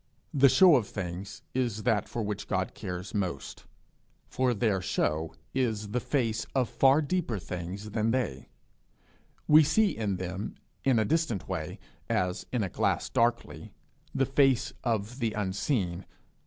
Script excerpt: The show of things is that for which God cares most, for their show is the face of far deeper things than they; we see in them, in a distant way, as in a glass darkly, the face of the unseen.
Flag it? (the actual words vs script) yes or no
no